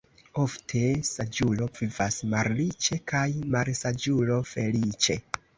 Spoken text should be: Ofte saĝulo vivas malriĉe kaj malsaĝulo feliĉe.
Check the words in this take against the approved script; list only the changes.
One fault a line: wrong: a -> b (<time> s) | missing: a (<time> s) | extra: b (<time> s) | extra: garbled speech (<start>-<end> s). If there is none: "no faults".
no faults